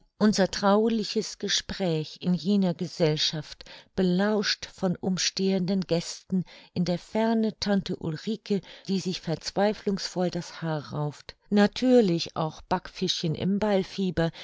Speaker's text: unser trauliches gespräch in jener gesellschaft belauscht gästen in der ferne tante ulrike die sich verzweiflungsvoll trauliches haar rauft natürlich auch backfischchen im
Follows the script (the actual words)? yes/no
no